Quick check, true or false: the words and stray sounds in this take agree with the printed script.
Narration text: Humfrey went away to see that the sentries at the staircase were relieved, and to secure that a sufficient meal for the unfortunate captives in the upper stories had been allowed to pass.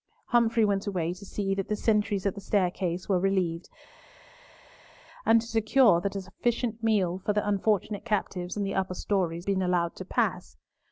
false